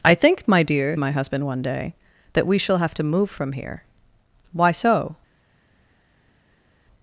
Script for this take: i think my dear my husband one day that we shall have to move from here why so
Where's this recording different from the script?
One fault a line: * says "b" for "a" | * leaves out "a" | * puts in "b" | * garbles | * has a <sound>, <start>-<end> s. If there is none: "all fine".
all fine